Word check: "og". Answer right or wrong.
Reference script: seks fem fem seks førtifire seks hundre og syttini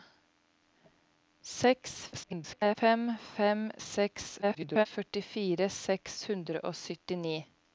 right